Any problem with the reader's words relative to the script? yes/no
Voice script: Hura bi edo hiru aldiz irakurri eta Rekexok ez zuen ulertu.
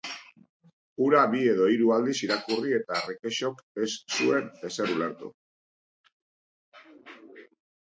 yes